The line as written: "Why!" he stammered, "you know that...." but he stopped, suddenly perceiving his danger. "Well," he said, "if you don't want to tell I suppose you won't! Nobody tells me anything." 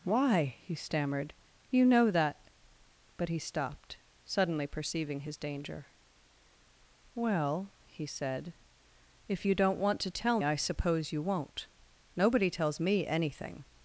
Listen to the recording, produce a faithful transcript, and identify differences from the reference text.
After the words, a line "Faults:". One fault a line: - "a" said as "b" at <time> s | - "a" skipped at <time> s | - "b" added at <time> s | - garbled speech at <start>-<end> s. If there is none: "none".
"Why!" he stammered, "you know that...." but he stopped, suddenly perceiving his danger. "Well," he said, "if you don't want to tell I suppose you won't! Nobody tells me anything."
Faults:
none